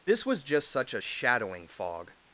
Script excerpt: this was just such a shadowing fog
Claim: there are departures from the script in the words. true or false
false